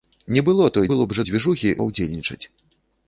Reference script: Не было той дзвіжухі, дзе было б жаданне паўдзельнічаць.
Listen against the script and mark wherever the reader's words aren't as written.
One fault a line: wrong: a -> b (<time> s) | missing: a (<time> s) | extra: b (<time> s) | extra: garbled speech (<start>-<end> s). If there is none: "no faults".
missing: дзвіжухі дзе (0.9 s)
wrong: жаданне -> дзвіжухі (1.3 s)